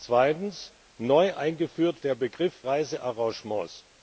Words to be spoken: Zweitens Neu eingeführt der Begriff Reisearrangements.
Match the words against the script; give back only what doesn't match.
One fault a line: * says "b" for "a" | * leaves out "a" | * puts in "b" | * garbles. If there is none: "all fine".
all fine